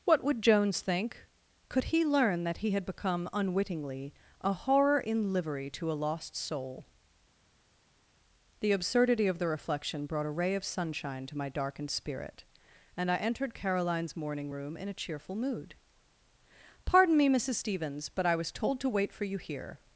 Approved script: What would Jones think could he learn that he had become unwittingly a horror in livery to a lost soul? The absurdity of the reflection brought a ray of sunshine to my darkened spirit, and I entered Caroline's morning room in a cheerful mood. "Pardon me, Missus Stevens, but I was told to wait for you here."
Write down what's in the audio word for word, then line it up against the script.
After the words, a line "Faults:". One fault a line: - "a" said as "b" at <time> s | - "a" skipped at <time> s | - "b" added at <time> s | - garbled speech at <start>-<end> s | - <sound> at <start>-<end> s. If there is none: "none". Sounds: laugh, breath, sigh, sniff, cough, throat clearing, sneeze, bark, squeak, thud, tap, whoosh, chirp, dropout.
What would Jones think could he learn that he had become unwittingly a horror in livery to a lost soul? The absurdity of the reflection brought a ray of sunshine to my darkened spirit, and I entered Caroline's morning room in a cheerful mood. "Pardon me, Missus Stevens, but I was told to wait for you here."
Faults:
none